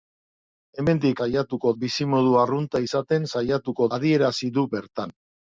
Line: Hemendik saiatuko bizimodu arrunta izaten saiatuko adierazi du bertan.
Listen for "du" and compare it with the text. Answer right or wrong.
right